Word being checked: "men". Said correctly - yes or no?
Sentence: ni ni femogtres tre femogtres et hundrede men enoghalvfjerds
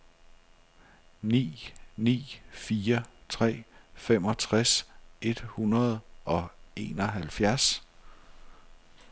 no